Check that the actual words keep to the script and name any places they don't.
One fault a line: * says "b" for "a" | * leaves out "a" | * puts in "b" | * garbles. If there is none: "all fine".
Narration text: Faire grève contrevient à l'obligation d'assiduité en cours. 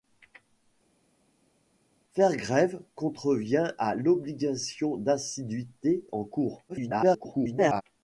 * garbles